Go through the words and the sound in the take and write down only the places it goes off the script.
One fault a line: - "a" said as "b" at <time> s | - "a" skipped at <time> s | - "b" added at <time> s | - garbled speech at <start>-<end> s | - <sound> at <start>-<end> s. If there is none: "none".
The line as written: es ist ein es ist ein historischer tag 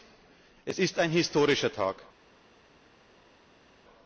- "es ist ein" skipped at 1.1 s